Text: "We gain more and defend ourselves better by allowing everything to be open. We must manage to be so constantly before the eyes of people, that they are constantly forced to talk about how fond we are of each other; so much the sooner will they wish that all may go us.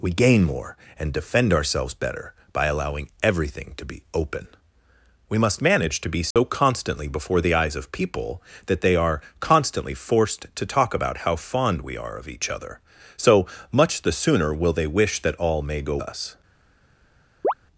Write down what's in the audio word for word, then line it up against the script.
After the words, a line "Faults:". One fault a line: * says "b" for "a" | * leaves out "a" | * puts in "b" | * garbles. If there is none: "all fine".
"We gain more and defend ourselves better by allowing everything to be open. We must manage to be so constantly before the eyes of people, that they are constantly forced to talk about how fond we are of each other; so much the sooner will they wish that all may go us.
Faults:
all fine